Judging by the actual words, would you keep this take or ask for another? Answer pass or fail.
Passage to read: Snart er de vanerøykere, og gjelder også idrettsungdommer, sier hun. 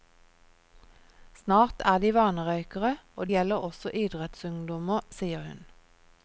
pass